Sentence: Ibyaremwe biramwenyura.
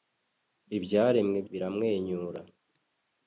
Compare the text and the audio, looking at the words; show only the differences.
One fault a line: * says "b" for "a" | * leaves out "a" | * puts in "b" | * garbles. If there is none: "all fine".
all fine